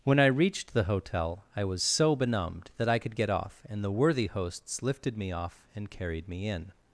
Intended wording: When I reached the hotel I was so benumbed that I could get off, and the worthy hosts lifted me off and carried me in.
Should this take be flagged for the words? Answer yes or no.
no